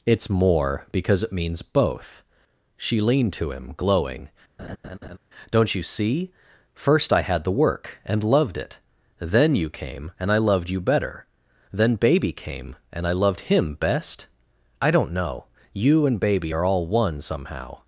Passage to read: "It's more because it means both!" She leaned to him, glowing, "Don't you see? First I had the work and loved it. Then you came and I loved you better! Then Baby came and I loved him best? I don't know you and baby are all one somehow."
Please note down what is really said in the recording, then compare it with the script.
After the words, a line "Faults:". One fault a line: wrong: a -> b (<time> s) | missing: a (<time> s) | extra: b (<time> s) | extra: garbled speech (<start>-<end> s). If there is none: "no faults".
"It's more because it means both!" She leaned to him, glowing, "Don't you see? First I had the work and loved it. Then you came and I loved you better! Then Baby came and I loved him best? I don't know you and baby are all one somehow."
Faults:
no faults